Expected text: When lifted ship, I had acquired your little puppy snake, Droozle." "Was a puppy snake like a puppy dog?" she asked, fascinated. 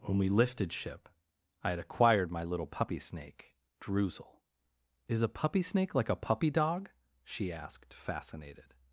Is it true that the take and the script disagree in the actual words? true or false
true